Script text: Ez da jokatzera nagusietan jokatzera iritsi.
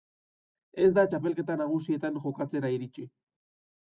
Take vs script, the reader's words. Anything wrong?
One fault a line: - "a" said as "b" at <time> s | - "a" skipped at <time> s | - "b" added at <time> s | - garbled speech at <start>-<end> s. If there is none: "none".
- "jokatzera" said as "txapelketa" at 1.1 s